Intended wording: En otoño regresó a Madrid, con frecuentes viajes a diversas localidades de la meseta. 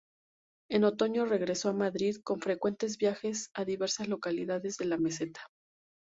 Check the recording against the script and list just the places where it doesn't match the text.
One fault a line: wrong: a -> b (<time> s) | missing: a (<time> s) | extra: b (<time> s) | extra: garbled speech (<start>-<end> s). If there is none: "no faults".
no faults